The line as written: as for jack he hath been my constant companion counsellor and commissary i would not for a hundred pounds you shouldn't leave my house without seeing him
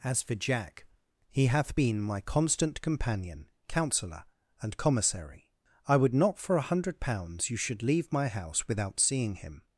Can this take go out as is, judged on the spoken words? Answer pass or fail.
fail